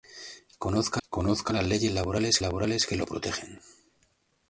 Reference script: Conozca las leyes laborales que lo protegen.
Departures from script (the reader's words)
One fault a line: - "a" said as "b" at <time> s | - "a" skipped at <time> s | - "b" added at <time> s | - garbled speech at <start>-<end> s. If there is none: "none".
- "conozca" added at 1.1 s
- "laborales" added at 2.4 s